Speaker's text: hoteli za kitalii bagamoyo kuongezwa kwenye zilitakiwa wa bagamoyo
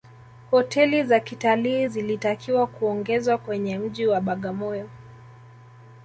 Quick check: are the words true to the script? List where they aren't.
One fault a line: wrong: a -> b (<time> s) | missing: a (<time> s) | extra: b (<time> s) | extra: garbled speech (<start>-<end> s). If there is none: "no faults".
wrong: bagamoyo -> zilitakiwa (1.8 s)
wrong: zilitakiwa -> mji (3.8 s)